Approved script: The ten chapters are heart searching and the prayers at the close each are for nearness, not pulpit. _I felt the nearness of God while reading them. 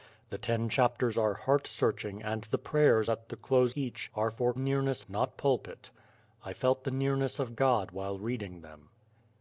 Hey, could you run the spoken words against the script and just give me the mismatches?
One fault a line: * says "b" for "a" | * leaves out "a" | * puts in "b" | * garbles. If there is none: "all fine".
all fine